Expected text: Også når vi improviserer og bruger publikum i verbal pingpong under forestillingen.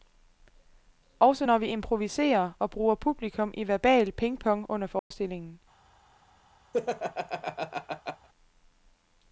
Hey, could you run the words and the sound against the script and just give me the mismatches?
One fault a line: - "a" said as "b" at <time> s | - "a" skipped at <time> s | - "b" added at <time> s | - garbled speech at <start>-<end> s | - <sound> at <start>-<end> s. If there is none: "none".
- dropout at 5.0-5.1 s
- laugh at 6.7-8.3 s